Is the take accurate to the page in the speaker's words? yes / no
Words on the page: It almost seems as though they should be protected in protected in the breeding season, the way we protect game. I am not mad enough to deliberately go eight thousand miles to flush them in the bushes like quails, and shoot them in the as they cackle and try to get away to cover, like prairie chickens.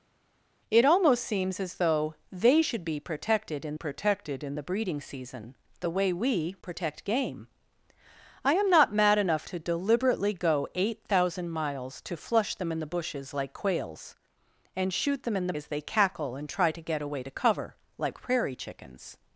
yes